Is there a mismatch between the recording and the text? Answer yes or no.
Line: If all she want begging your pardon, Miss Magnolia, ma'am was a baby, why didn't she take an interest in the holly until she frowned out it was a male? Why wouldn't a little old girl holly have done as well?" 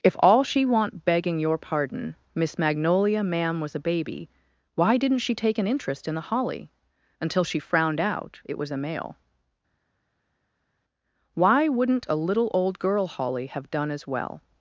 no